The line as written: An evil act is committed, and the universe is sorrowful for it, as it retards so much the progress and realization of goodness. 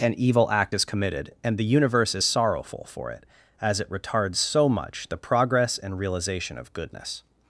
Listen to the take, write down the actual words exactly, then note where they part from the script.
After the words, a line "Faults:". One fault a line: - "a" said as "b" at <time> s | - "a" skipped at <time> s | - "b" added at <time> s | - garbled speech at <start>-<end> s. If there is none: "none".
An evil act is committed, and the universe is sorrowful for it, as it retards so much the progress and realization of goodness.
Faults:
none